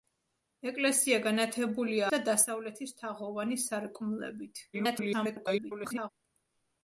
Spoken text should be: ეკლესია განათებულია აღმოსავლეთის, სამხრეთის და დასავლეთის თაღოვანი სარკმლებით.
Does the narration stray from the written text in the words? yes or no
yes